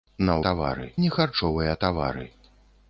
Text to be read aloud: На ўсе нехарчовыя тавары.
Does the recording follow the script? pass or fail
fail